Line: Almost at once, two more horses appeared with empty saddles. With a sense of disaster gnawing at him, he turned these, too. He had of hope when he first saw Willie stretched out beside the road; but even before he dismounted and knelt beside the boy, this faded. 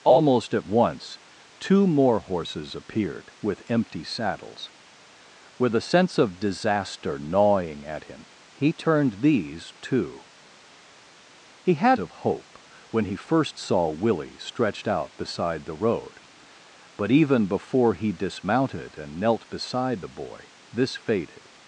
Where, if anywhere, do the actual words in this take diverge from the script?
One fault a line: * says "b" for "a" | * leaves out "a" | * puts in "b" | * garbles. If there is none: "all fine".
all fine